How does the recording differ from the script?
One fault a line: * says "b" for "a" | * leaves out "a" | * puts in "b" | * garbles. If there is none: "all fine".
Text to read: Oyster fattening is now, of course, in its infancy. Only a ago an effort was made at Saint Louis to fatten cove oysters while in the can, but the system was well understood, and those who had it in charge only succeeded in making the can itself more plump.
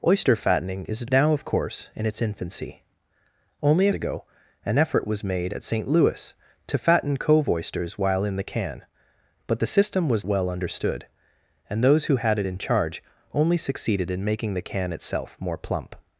all fine